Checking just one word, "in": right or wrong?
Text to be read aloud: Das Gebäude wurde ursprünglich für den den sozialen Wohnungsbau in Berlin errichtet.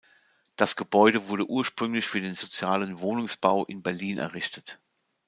right